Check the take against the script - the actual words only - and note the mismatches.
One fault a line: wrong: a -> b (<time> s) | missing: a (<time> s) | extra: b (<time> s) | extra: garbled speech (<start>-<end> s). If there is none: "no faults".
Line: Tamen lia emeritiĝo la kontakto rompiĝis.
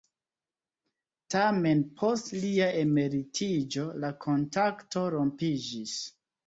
extra: post (2.0 s)